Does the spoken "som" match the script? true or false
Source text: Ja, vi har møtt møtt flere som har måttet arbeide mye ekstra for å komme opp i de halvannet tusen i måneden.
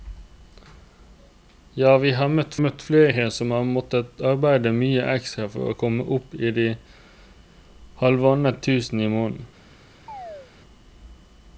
true